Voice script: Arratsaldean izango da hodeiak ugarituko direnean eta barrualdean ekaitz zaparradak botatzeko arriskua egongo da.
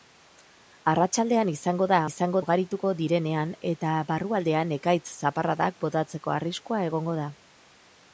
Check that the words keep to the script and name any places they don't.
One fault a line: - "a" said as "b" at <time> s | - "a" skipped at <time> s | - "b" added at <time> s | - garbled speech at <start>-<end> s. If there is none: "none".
- "hodeiak" said as "izango" at 2.1 s